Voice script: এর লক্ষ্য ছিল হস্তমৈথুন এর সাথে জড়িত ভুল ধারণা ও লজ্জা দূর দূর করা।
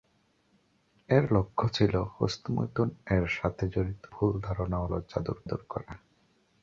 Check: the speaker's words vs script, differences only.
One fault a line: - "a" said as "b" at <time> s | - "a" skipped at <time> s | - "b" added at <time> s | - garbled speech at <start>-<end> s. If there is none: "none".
none